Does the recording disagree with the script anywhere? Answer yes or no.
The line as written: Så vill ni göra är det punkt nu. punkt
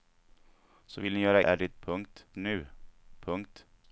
no